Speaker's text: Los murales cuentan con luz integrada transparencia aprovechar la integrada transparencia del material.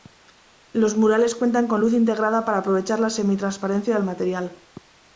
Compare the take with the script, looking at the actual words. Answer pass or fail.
fail